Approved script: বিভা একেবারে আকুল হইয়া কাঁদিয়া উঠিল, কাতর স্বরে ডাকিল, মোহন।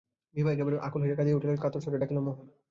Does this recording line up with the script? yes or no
yes